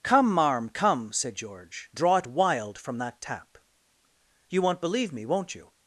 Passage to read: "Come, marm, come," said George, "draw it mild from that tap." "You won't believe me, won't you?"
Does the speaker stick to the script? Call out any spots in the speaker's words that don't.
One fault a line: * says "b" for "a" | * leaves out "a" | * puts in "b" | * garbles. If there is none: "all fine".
* says "wild" for "mild"